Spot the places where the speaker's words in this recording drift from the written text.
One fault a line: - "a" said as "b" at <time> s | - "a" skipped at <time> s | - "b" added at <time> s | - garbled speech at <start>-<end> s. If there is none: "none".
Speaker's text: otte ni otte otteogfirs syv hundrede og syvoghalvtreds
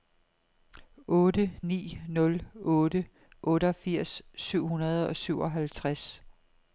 - "nul" added at 2.1 s